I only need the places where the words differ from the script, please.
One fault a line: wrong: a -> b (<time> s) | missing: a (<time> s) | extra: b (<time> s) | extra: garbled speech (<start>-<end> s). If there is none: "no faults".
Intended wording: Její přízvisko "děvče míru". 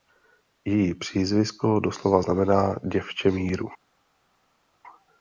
extra: doslova znamená (1.8 s)